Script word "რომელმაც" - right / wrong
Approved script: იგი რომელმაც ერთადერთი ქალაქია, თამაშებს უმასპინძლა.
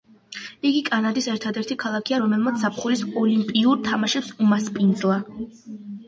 wrong